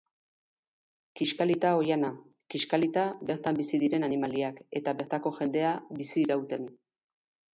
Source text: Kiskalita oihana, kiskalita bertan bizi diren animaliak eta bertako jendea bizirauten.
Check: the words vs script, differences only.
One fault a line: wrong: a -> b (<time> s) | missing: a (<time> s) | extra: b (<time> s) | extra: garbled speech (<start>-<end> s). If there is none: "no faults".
no faults